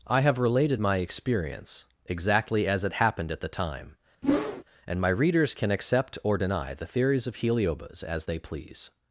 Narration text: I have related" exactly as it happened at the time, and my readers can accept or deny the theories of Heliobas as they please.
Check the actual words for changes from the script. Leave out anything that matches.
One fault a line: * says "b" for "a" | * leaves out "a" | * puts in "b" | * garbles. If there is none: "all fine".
* puts in "my experience"